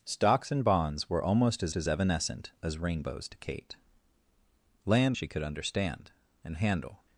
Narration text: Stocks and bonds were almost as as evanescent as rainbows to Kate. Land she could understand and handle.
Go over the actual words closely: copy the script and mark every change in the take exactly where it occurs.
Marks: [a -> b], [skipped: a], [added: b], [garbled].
Stocks and bonds were almost as as evanescent as rainbows to Kate. Land she could understand and handle.